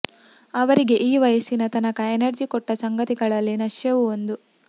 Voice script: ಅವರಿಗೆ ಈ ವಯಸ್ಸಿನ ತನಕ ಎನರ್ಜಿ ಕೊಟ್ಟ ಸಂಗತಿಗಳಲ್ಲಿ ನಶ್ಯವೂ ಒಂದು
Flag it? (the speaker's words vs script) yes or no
no